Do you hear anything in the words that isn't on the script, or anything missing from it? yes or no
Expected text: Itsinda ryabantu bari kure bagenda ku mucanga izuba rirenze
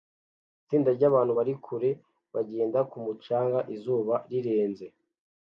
no